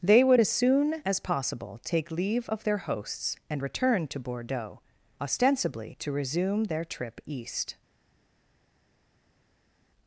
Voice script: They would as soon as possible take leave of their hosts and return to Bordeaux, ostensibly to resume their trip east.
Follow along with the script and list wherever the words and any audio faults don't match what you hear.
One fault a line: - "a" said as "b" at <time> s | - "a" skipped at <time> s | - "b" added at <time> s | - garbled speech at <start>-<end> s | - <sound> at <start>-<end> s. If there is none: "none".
none